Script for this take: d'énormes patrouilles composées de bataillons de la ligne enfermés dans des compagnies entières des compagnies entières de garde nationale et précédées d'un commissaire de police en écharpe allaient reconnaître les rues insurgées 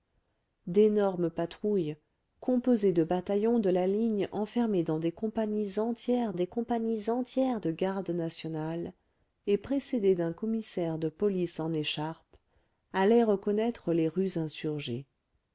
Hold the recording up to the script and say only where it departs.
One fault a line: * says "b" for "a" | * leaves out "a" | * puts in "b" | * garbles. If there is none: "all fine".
all fine